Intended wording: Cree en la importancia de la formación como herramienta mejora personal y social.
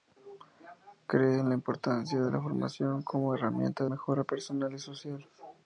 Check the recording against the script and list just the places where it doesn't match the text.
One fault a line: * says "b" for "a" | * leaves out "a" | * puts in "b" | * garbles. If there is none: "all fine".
all fine